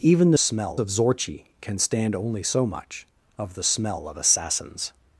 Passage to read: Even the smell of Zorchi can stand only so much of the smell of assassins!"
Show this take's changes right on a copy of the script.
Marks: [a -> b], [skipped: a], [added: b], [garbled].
Even the smell of Zorchi can stand only so much of the smell of assassins!"